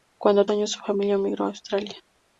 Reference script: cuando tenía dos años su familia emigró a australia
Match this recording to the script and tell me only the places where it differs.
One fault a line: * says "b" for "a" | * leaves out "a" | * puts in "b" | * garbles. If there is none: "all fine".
* leaves out "tenía dos"